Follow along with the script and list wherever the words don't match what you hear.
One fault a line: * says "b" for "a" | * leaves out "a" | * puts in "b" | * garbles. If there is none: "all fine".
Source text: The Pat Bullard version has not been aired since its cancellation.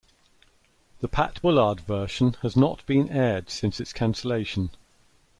all fine